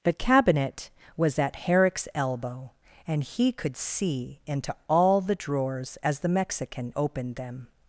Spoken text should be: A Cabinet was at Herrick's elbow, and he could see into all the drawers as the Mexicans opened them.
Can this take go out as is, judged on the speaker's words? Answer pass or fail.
fail